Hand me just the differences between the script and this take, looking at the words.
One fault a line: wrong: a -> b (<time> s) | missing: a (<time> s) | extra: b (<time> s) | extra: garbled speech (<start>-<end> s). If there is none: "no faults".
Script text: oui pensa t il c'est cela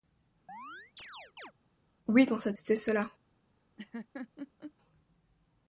missing: t il (2.5 s)